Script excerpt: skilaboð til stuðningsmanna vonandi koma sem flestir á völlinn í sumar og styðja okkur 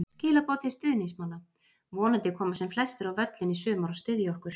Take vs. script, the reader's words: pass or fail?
pass